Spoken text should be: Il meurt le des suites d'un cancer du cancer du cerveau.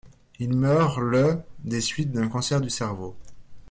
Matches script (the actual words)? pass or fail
fail